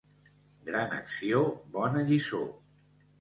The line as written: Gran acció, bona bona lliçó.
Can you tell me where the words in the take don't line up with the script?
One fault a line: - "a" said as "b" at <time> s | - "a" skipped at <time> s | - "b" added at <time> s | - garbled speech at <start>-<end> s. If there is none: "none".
- "bona" skipped at 2.0 s